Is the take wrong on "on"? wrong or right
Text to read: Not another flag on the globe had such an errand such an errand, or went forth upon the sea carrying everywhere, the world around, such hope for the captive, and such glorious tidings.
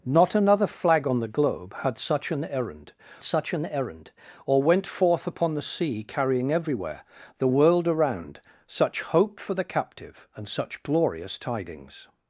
right